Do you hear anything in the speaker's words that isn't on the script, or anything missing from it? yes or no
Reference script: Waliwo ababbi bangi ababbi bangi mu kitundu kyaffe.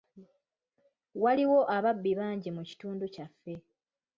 yes